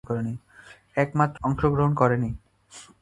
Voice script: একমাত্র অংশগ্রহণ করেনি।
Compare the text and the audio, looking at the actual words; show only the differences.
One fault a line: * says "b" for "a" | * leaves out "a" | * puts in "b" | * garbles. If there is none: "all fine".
all fine